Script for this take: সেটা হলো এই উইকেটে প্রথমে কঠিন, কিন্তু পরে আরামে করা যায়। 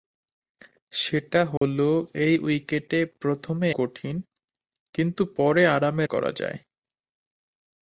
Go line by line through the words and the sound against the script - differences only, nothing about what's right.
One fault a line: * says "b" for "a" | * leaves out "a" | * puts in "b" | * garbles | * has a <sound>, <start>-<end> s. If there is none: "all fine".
* has a dropout, 1.6-1.6 s